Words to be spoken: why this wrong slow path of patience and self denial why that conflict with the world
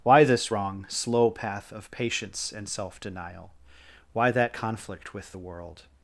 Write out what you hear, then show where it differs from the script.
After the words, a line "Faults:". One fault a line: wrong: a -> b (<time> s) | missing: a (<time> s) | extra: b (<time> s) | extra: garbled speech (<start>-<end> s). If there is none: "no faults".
why this wrong slow path of patience and self denial why that conflict with the world
Faults:
no faults